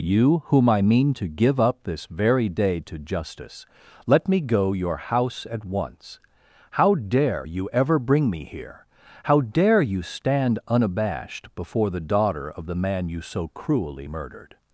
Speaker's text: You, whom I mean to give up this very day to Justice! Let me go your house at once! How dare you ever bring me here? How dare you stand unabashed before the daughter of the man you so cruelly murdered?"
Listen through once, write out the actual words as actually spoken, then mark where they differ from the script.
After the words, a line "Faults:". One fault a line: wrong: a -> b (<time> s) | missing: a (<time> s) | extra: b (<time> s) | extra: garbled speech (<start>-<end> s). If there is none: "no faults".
You, whom I mean to give up this very day to Justice! Let me go your house at once! How dare you ever bring me here? How dare you stand unabashed before the daughter of the man you so cruelly murdered?"
Faults:
no faults